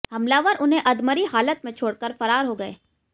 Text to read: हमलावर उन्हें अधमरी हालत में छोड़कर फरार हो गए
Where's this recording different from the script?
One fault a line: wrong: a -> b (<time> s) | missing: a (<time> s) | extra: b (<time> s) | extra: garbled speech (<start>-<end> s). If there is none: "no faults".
no faults